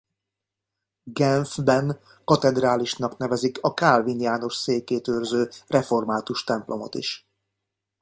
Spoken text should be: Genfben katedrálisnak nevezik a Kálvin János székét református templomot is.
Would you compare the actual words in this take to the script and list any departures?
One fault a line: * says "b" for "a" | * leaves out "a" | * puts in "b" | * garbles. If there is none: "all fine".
* puts in "őrző"